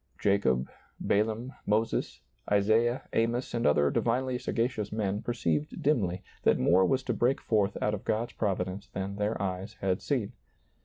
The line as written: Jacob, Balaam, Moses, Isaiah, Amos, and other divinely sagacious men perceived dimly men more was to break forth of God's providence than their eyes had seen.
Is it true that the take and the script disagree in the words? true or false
true